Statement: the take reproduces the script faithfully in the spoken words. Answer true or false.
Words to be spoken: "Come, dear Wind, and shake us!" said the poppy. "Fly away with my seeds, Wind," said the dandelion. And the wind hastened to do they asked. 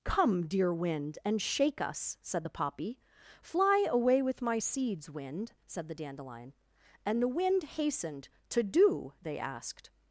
true